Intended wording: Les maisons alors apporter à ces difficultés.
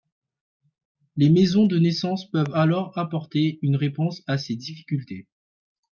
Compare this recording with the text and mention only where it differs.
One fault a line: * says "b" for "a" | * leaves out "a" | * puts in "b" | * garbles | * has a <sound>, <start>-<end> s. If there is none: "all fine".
* puts in "de naissance peuvent"
* puts in "une réponse"